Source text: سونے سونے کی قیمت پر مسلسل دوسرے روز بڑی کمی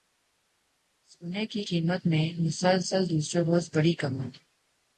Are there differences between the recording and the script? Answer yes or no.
yes